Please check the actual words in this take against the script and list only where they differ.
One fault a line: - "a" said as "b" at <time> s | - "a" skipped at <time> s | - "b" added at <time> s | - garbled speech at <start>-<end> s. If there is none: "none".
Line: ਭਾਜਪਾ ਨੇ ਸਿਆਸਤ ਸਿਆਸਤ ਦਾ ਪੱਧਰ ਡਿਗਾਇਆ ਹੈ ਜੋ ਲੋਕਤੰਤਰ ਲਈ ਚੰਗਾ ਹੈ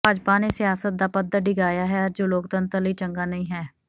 - "ਸਿਆਸਤ" skipped at 0.9 s
- "ਨਹੀਂ" added at 3.2 s